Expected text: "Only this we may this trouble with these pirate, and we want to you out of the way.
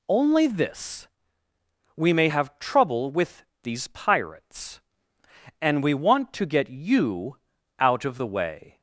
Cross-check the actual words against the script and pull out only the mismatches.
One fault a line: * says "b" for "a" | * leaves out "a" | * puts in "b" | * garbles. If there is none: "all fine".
* says "have" for "this"
* says "pirates" for "pirate"
* puts in "get"